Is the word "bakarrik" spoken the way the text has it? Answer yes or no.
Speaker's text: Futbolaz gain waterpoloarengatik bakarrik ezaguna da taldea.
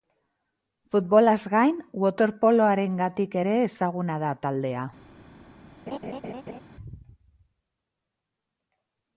no